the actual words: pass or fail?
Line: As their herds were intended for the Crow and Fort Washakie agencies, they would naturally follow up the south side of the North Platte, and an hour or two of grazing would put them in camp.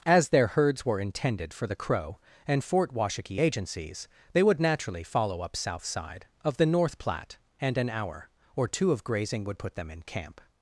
fail